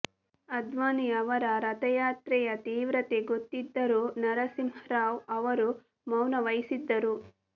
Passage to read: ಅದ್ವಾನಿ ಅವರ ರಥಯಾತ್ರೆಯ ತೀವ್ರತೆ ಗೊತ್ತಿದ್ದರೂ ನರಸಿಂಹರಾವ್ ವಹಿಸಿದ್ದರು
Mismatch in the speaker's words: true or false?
true